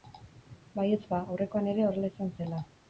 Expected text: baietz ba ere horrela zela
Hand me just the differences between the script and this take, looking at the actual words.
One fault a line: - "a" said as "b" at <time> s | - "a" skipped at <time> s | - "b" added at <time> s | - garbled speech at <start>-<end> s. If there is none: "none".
- "aurrekoan" added at 1.4 s
- "izan" added at 2.1 s